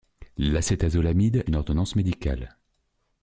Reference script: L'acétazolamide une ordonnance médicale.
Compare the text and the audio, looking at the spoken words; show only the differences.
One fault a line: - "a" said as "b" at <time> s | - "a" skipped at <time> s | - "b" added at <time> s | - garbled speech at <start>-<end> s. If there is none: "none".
none